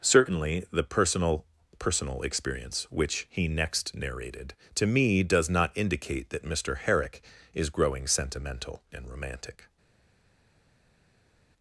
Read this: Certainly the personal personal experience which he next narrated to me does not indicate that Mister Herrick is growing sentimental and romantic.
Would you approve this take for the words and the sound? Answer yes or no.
yes